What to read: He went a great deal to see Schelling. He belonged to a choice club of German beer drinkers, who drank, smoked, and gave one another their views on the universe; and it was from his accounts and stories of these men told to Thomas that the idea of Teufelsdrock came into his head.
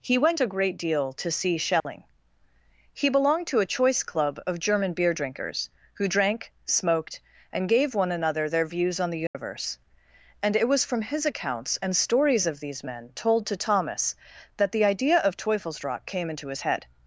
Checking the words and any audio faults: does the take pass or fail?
fail